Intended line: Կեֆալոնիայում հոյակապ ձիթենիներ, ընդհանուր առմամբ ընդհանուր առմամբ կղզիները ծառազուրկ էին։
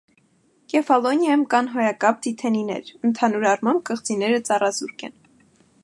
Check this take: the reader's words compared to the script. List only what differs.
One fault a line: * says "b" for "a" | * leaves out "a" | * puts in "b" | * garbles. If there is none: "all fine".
* puts in "կան"
* leaves out "ընդհանուր առմամբ"
* says "են" for "էին"